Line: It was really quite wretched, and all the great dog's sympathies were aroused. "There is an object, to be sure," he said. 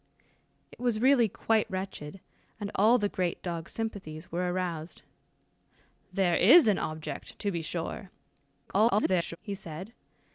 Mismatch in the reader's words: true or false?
true